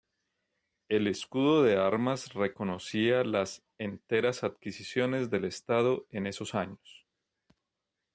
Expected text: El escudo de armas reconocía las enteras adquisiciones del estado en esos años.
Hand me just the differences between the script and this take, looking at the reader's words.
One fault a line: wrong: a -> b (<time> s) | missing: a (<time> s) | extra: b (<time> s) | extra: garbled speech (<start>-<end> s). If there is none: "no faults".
no faults